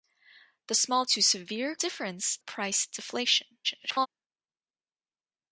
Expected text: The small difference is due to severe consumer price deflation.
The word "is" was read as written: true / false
false